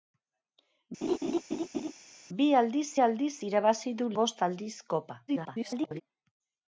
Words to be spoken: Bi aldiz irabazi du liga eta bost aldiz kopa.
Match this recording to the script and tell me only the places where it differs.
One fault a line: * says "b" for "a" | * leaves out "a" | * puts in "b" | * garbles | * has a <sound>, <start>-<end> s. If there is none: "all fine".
* has a laugh, 1.0-1.9 s
* puts in "aldiz"
* leaves out "liga eta"
* garbles